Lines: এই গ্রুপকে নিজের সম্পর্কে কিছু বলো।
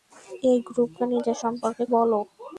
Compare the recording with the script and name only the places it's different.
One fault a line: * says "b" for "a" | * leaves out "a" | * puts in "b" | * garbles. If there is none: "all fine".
* leaves out "কিছু"